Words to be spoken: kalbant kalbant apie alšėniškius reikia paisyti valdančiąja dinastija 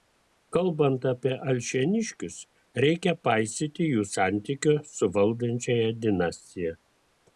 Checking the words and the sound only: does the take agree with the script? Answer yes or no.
no